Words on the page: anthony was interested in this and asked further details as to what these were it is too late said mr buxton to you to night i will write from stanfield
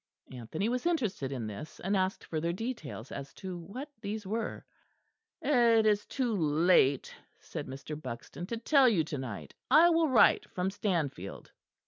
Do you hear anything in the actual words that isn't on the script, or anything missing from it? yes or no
yes